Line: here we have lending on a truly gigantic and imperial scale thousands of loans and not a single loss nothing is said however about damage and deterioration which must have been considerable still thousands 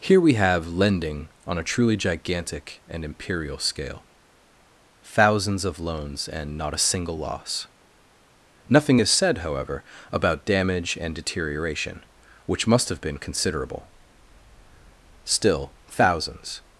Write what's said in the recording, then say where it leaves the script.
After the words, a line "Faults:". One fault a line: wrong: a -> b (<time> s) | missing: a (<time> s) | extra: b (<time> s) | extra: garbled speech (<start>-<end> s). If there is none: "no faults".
here we have lending on a truly gigantic and imperial scale thousands of loans and not a single loss nothing is said however about damage and deterioration which must have been considerable still thousands
Faults:
no faults